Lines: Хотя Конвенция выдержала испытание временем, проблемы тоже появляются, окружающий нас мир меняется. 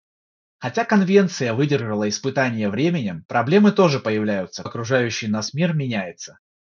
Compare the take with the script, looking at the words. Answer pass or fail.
pass